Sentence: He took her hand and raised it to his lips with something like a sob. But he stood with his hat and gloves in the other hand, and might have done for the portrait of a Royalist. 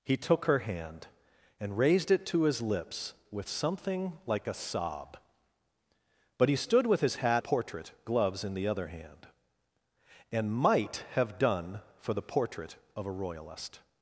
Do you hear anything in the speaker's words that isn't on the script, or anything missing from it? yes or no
yes